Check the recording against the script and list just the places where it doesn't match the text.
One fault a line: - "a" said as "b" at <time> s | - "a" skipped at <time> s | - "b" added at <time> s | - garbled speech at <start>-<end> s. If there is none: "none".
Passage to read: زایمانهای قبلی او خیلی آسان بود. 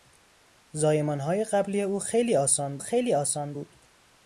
- "خیلی آسان" added at 2.8 s